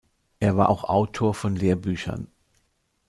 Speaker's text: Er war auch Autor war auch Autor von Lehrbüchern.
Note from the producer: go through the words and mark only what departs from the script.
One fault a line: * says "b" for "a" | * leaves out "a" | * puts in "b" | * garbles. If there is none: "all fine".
* leaves out "war auch Autor"